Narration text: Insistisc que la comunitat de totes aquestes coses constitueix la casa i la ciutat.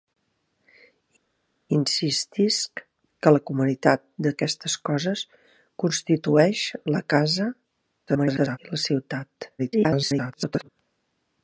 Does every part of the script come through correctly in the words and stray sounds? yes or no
no